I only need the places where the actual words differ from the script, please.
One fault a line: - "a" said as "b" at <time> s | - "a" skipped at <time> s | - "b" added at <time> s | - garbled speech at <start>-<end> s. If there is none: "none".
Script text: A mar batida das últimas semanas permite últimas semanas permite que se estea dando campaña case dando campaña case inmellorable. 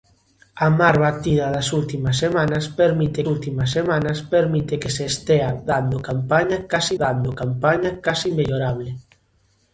none